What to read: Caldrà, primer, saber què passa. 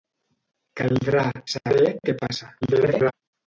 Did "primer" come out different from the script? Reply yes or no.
yes